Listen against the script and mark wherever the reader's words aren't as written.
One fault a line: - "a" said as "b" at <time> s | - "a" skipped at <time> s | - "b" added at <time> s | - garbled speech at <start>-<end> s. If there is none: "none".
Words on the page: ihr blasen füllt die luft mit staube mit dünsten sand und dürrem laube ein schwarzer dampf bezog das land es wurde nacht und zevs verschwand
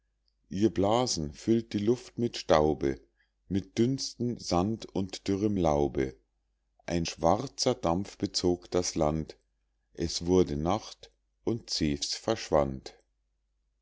none